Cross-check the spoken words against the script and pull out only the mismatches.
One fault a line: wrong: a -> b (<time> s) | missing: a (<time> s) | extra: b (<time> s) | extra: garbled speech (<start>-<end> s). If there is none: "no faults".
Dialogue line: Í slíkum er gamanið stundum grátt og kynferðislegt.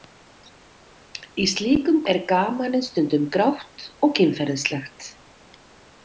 no faults